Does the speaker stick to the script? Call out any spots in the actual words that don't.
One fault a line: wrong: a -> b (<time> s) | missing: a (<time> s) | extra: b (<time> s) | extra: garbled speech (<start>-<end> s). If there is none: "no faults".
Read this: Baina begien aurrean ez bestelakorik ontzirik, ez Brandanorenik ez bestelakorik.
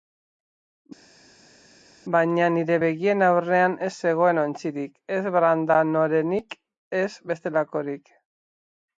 extra: nire (2.5 s)
wrong: bestelakorik -> zegoen (4.0 s)